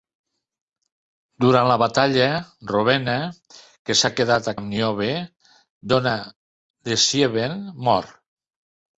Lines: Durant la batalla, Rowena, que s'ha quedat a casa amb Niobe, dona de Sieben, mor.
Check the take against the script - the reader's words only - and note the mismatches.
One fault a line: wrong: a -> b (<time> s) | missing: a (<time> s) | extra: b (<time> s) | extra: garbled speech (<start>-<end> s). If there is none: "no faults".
missing: casa (4.6 s)